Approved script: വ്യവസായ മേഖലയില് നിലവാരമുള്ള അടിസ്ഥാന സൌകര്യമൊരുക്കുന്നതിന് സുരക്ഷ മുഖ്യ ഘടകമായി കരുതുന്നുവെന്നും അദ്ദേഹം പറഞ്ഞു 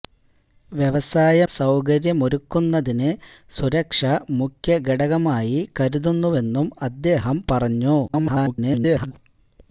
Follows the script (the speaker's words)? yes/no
no